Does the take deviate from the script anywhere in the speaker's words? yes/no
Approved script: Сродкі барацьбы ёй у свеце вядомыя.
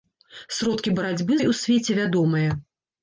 no